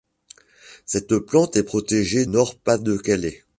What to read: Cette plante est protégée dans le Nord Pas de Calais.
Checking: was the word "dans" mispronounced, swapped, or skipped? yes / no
yes